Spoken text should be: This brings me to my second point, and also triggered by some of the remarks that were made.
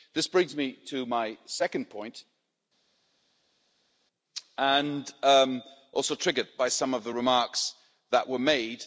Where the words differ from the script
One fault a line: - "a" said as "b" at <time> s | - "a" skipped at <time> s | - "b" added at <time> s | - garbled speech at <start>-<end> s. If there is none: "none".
none